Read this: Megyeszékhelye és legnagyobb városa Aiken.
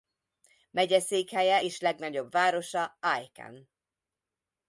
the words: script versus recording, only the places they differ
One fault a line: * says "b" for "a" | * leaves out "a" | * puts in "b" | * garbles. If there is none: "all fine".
all fine